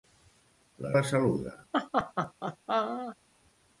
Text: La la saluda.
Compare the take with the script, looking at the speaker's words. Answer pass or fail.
pass